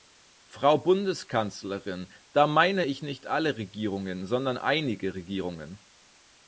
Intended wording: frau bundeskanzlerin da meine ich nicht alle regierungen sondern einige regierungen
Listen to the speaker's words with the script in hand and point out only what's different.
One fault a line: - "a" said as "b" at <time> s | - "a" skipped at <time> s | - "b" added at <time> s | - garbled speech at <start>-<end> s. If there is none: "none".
none